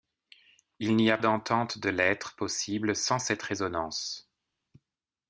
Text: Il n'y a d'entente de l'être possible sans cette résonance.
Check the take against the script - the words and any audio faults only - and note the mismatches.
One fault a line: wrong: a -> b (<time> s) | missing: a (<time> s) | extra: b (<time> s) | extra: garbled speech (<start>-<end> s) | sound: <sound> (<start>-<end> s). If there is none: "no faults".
no faults